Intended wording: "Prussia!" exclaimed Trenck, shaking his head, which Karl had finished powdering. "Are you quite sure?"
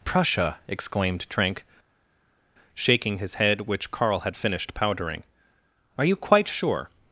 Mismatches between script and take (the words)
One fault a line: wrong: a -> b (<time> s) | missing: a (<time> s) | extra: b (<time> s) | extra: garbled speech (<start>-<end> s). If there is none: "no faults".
no faults